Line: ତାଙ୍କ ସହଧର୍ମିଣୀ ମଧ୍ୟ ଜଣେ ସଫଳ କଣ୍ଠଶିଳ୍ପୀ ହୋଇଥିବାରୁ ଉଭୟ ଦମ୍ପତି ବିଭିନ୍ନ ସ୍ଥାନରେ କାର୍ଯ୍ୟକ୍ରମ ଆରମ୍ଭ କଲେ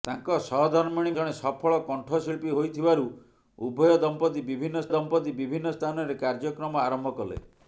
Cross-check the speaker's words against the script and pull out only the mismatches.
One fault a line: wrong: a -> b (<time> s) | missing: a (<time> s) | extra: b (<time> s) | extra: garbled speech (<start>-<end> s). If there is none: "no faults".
missing: ମଧ୍ୟ (1.1 s)
extra: ଦମ୍ପତି ବିଭିନ୍ନ (4.9 s)